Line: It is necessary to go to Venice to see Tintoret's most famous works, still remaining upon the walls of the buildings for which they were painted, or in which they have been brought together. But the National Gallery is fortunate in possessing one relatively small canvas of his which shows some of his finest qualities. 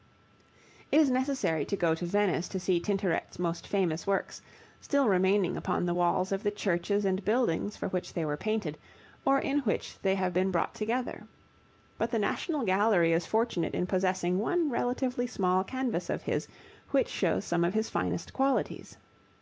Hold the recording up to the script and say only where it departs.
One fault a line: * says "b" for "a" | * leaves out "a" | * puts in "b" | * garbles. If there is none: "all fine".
* puts in "churches and"